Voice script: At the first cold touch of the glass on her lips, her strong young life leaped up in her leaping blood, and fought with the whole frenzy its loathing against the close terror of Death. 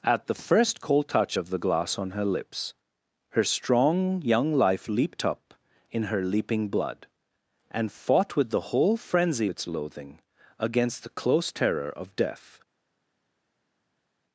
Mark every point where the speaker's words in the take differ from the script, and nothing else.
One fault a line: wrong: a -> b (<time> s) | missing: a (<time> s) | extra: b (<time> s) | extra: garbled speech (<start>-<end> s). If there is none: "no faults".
no faults